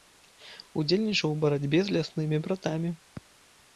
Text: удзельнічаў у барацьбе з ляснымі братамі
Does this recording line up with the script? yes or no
yes